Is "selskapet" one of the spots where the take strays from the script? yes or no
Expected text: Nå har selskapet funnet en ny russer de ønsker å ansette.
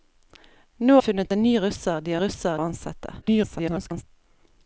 yes